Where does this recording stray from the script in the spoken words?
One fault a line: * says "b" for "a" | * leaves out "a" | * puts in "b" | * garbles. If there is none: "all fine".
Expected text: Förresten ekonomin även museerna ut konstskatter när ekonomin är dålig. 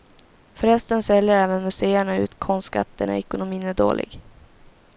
* says "säljer" for "ekonomin"